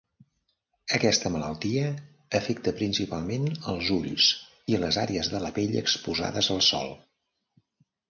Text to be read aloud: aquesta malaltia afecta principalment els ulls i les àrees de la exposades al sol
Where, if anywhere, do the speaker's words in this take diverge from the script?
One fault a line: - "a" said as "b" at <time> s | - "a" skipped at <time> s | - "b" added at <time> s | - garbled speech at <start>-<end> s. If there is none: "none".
- "pell" added at 5.6 s